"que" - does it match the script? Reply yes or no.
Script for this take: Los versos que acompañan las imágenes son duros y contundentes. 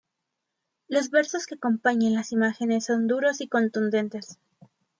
yes